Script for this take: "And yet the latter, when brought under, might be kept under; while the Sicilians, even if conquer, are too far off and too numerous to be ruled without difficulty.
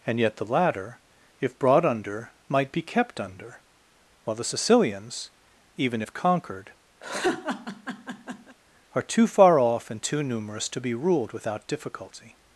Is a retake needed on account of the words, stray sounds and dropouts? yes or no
yes